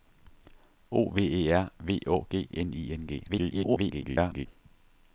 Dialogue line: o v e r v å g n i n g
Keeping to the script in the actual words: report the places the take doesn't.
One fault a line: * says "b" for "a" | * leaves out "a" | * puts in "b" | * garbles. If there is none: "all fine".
* garbles